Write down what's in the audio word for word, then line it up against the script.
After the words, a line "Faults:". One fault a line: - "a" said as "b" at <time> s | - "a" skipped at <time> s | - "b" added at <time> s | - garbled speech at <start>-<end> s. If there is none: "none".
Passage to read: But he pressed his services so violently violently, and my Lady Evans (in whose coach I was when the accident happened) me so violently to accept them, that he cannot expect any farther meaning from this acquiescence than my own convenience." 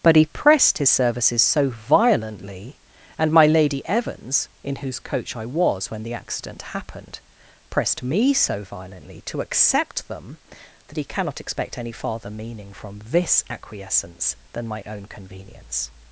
But he pressed his services so violently, and my Lady Evans (in whose coach I was when the accident happened) pressed me so violently to accept them, that he cannot expect any farther meaning from this acquiescence than my own convenience."
Faults:
- "violently" skipped at 2.8 s
- "pressed" added at 7.7 s